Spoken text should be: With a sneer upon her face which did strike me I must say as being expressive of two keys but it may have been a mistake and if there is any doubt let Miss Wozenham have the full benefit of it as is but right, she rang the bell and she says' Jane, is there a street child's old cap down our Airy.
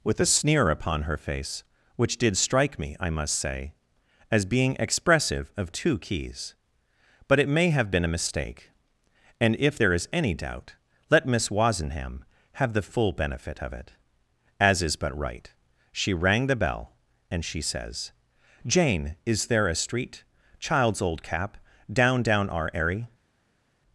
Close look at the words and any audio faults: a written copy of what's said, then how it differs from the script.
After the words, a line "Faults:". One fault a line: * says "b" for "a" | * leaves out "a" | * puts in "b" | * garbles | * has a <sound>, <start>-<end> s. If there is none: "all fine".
With a sneer upon her face which did strike me I must say as being expressive of two keys but it may have been a mistake and if there is any doubt let Miss Wozenham have the full benefit of it as is but right, she rang the bell and she says' Jane, is there a street child's old cap down down our Airy.
Faults:
* puts in "down"